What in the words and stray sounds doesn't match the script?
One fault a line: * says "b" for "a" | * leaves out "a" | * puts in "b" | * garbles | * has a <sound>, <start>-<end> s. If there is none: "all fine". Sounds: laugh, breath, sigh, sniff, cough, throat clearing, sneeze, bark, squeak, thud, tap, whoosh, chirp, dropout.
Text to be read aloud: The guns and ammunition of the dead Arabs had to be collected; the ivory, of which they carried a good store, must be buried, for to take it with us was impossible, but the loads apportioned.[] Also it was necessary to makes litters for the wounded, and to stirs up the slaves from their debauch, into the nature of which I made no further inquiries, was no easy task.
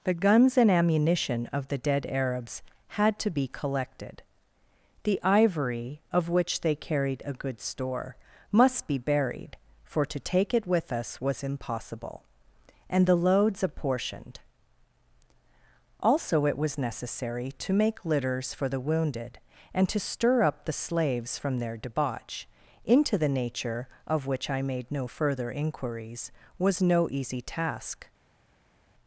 * says "and" for "but"
* says "make" for "makes"
* says "stir" for "stirs"